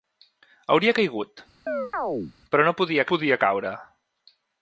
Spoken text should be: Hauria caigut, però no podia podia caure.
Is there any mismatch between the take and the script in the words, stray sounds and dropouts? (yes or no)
yes